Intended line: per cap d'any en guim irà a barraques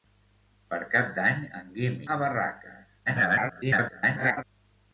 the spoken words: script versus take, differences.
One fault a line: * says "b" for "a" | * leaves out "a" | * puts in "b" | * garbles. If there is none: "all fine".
* leaves out "irà"
* garbles